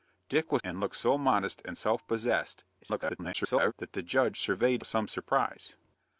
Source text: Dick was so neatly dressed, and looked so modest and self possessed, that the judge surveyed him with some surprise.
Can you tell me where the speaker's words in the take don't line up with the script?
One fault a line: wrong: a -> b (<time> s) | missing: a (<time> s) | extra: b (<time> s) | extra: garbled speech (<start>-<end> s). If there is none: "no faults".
missing: so neatly dressed (0.6 s)
extra: garbled speech (2.8-3.7 s)
missing: him (4.8 s)